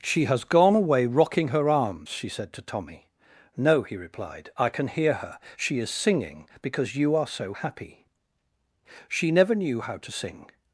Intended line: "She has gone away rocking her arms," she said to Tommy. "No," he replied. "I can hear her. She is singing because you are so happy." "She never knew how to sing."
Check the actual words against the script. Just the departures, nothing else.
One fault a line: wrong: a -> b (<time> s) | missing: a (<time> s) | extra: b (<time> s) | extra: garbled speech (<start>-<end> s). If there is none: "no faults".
no faults